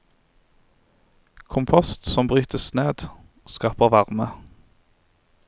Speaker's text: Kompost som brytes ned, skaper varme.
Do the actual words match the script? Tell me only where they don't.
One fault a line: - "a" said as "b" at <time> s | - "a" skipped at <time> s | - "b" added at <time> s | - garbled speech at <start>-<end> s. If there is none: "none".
none